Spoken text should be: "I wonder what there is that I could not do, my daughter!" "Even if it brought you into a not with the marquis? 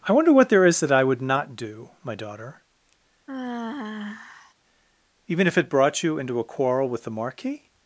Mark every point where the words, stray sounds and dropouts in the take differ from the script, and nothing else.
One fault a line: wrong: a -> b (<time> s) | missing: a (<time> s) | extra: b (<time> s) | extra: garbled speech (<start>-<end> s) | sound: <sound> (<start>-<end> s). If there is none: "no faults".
wrong: could -> would (1.0 s)
sound: sigh (3.3-4.5 s)
wrong: not -> quarrel (6.4 s)